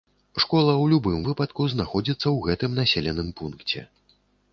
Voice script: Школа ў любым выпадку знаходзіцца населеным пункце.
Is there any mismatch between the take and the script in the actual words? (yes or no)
yes